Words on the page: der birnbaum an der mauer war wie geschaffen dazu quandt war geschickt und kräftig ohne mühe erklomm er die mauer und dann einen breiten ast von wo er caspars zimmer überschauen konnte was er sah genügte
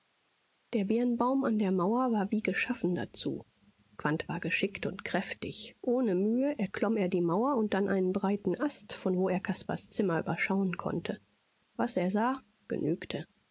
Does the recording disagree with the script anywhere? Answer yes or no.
no